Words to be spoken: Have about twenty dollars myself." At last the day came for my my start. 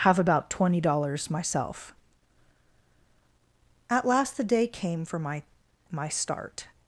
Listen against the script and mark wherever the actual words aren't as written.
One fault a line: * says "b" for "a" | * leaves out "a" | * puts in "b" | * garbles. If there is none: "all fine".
all fine